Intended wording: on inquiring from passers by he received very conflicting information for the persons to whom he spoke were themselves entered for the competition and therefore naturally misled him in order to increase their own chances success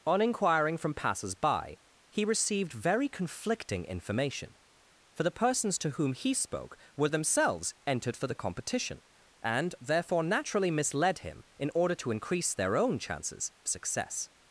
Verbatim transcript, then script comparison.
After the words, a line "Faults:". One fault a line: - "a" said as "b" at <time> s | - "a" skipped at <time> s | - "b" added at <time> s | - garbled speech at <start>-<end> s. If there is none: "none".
on inquiring from passers by he received very conflicting information for the persons to whom he spoke were themselves entered for the competition and therefore naturally misled him in order to increase their own chances success
Faults:
none